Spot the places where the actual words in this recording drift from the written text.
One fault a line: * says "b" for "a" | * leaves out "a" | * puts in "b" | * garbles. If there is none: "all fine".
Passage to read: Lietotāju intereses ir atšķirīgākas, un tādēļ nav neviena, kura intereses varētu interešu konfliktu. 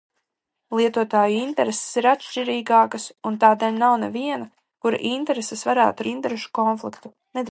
all fine